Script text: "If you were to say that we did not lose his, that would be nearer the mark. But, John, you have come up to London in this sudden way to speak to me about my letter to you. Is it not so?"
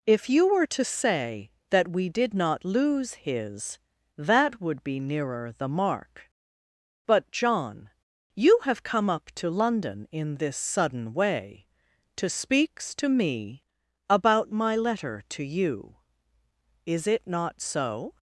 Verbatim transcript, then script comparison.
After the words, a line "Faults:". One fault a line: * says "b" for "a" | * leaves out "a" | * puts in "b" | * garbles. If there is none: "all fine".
"If you were to say that we did not lose his, that would be nearer the mark. But, John, you have come up to London in this sudden way to speaks to me about my letter to you. Is it not so?"
Faults:
* says "speaks" for "speak"